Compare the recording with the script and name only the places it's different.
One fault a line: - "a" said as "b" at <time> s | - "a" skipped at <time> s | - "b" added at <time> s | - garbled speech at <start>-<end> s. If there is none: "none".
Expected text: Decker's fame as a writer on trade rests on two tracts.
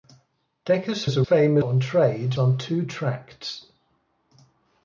- "fame" skipped at 1.1 s
- "writer" said as "fame" at 1.2 s
- "rests" skipped at 2.4 s